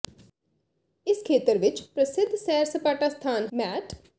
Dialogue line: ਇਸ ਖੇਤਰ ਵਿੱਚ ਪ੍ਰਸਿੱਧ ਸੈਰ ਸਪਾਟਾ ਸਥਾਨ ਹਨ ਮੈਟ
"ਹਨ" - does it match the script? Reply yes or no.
no